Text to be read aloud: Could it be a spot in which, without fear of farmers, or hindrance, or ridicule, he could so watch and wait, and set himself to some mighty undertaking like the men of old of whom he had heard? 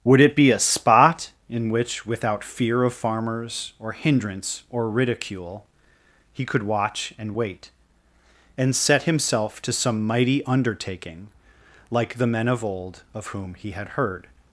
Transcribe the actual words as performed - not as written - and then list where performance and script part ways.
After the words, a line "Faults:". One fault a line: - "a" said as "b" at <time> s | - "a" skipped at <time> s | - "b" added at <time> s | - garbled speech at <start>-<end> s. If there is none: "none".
Would it be a spot in which, without fear of farmers, or hindrance, or ridicule, he could watch and wait, and set himself to some mighty undertaking like the men of old of whom he had heard?
Faults:
- "Could" said as "Would" at 0.0 s
- "so" skipped at 6.6 s